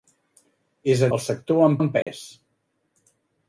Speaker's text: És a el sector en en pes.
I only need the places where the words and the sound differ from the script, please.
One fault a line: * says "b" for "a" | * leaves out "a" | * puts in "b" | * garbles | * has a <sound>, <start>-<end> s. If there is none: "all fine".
* has a dropout, 2.0-2.1 s